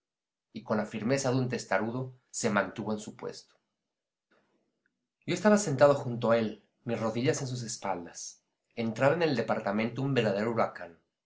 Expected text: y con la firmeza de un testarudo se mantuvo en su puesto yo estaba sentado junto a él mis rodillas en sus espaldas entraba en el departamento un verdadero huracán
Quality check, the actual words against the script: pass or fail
pass